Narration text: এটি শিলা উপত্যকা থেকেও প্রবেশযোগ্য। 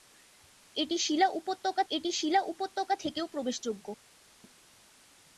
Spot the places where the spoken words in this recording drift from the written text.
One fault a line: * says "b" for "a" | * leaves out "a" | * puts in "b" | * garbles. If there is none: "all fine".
* puts in "এটি শিলা উপত্যকা"